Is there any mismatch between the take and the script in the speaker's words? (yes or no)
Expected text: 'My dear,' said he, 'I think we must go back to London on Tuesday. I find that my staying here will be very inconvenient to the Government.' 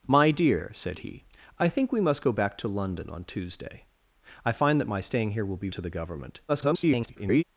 yes